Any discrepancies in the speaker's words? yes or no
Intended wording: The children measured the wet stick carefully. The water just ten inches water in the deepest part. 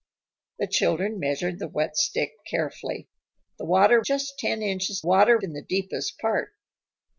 no